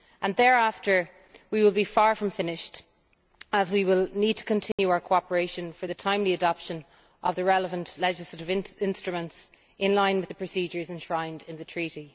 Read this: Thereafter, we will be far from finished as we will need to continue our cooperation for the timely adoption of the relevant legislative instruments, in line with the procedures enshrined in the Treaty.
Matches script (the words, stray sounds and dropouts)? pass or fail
fail